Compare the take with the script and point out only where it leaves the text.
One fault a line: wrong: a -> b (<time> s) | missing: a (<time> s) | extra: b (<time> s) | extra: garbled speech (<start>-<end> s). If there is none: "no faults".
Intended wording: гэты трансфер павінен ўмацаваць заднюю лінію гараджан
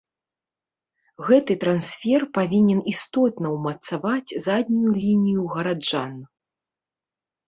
extra: істотна (2.9 s)